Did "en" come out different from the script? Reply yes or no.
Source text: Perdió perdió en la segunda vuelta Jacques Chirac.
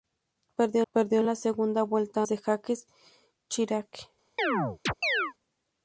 no